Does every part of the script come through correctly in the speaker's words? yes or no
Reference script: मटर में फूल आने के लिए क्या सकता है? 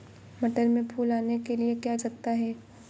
yes